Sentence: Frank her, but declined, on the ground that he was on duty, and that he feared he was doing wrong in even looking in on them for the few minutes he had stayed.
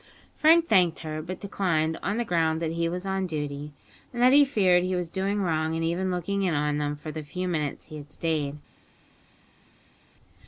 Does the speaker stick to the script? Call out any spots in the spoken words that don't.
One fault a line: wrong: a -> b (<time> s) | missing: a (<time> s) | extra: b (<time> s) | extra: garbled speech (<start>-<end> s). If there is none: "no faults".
extra: thanked (0.7 s)